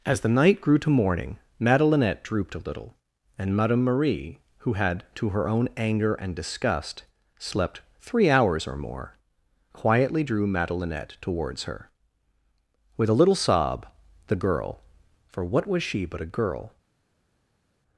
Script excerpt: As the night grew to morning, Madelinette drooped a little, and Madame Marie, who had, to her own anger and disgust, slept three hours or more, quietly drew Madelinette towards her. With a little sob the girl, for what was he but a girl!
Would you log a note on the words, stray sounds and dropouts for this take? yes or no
yes